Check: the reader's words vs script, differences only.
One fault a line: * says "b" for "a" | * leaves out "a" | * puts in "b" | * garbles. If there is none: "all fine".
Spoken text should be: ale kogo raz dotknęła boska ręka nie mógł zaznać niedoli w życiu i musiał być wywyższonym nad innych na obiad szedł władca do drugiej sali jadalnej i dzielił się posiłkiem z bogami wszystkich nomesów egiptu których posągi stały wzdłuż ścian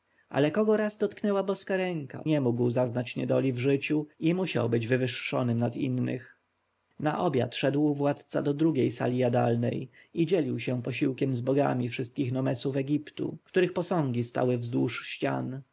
all fine